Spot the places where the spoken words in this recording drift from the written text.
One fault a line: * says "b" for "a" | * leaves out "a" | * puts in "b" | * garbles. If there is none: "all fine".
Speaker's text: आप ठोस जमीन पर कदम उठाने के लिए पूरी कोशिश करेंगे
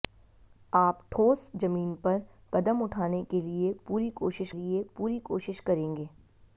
* puts in "लिए पूरी कोशिश"